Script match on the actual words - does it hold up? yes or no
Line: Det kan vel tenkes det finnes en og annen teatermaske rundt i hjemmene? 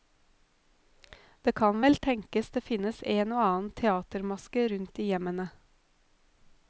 yes